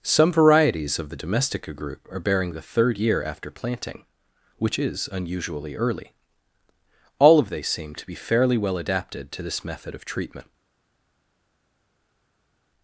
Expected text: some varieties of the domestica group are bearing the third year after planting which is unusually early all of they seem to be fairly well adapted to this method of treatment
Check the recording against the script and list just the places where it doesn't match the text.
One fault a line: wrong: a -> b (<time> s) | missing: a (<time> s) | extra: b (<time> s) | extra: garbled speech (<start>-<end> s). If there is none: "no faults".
no faults